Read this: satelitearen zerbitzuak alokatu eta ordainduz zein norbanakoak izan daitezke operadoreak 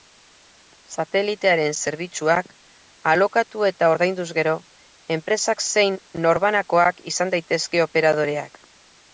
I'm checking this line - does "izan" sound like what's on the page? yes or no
yes